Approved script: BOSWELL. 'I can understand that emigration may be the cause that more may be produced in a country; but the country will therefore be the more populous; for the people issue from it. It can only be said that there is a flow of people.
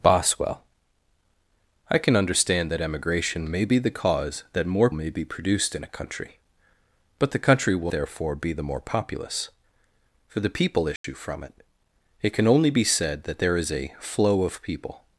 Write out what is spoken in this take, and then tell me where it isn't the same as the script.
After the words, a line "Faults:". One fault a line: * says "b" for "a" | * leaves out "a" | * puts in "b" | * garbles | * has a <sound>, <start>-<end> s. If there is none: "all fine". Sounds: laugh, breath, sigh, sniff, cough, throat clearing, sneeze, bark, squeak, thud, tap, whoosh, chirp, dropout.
BOSWELL. 'I can understand that emigration may be the cause that more may be produced in a country; but the country will therefore be the more populous; for the people issue from it. It can only be said that there is a flow of people.
Faults:
* has a dropout, 11.0-11.0 s